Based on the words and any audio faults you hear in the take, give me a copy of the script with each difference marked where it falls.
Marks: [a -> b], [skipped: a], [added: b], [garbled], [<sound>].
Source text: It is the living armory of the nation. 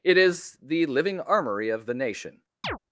It is the living armory of the nation. [chirp]